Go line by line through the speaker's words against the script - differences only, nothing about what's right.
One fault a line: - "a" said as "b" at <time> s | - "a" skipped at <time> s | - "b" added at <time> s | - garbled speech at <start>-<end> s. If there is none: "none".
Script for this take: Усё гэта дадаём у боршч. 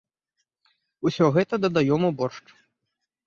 none